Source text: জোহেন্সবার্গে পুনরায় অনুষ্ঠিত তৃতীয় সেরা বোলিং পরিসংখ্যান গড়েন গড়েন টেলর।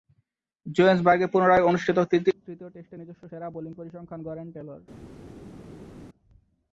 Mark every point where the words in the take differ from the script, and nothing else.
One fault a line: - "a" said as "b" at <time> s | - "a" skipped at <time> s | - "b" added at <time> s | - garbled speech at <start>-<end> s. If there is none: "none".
- "টেস্টে নিজস্ব" added at 2.7 s
- "গড়েন" skipped at 4.5 s